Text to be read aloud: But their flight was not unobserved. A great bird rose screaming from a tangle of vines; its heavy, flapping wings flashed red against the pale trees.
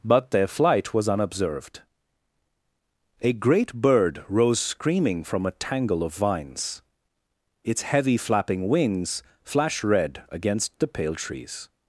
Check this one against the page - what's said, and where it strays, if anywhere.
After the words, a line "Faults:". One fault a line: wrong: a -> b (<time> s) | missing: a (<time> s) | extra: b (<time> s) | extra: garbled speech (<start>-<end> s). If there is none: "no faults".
But their flight was unobserved. A great bird rose screaming from a tangle of vines; its heavy, flapping wings flashed red against the pale trees.
Faults:
missing: not (1.1 s)